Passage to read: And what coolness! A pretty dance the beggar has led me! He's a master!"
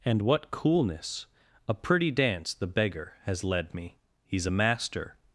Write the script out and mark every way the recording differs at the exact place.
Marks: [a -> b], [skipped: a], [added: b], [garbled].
And what coolness! A pretty dance the beggar has led me! He's a master!"